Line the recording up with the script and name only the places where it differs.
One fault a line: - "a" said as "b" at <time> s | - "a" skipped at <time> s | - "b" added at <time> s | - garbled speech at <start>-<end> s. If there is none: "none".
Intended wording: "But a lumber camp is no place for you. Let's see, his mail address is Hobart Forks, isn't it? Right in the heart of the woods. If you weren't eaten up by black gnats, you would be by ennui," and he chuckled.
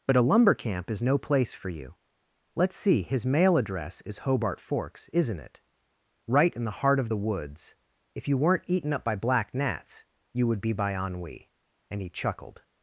none